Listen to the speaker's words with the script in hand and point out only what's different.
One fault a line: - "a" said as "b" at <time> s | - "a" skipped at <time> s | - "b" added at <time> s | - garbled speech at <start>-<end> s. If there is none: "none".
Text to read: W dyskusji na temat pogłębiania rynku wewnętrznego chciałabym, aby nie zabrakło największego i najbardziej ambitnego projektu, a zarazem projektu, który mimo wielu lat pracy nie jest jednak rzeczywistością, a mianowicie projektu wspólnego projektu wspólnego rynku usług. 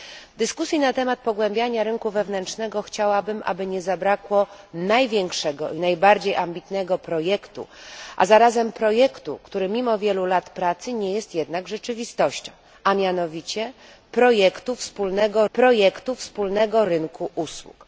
none